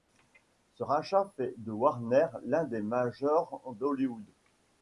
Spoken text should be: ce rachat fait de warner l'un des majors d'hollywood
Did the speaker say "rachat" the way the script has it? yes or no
yes